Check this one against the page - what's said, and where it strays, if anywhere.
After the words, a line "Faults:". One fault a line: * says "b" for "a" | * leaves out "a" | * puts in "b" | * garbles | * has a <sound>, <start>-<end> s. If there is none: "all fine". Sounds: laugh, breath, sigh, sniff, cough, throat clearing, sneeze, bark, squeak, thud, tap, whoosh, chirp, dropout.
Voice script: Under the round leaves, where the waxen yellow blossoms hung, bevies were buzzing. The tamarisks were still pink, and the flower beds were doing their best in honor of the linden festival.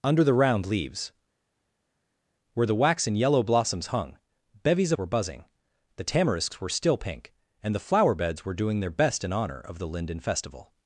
Under the round leaves, where the waxen yellow blossoms hung, bevies were buzzing. The tamarisks were still pink, and the flower beds were doing their best in honor of the linden festival.
Faults:
all fine